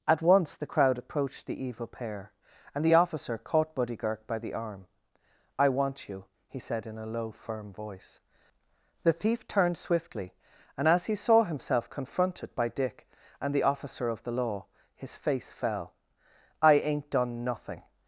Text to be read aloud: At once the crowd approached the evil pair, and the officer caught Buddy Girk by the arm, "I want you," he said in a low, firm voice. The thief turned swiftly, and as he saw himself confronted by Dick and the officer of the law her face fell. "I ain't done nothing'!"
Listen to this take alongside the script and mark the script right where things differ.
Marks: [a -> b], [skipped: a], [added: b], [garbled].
At once the crowd approached the evil pair, and the officer caught Buddy Girk by the arm, "I want you," he said in a low, firm voice. The thief turned swiftly, and as he saw himself confronted by Dick and the officer of the law [her -> his] face fell. "I ain't done nothing'!"